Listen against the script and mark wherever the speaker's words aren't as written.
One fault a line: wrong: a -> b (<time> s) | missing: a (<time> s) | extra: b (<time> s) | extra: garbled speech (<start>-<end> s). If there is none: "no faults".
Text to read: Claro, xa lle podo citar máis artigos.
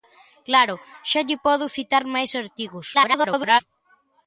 extra: garbled speech (2.9-3.6 s)